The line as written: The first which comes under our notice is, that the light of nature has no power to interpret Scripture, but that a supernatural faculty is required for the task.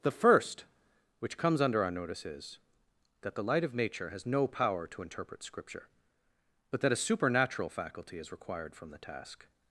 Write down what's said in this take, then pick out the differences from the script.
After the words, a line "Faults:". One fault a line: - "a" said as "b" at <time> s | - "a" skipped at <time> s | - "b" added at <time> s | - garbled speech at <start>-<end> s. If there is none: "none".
The first which comes under our notice is, that the light of nature has no power to interpret Scripture, but that a supernatural faculty is required from the task.
Faults:
- "for" said as "from" at 8.8 s